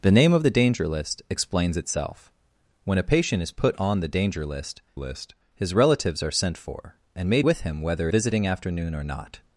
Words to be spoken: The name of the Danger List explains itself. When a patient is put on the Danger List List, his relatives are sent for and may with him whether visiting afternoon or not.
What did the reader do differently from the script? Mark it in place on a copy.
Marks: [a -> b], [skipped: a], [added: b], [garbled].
The name of the Danger List explains itself. When a patient is put on the Danger List List, his relatives are sent for and may with him whether visiting afternoon or not.